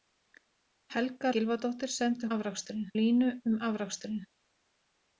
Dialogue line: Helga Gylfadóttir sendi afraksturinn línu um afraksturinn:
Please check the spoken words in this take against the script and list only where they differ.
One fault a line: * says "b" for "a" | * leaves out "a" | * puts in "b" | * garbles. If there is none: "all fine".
all fine